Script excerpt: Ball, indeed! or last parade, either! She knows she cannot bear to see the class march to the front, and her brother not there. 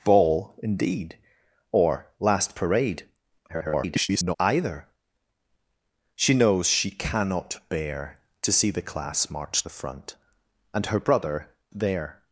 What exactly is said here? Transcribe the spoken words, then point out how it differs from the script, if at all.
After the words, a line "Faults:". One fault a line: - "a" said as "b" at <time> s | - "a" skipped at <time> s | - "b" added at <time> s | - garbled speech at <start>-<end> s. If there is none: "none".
Ball, indeed! or last parade, [garbled] either! She knows she cannot bear to see the class march the front, and her brother there.
Faults:
- garbled speech at 3.5-4.4 s
- "to" skipped at 9.6 s
- "not" skipped at 11.5 s